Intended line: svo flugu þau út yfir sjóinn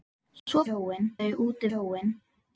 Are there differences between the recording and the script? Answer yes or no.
yes